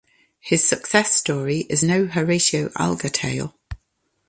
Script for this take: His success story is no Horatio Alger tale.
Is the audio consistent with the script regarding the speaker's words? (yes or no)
yes